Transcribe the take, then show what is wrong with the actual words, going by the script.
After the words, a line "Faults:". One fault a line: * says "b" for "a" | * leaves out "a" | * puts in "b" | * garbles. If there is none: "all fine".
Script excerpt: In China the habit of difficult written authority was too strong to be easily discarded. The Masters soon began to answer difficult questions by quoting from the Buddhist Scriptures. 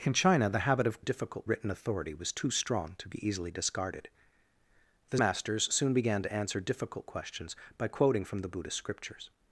In China the habit of difficult written authority was too strong to be easily discarded. The Masters soon began to answer difficult questions by quoting from the Buddhist Scriptures.
Faults:
all fine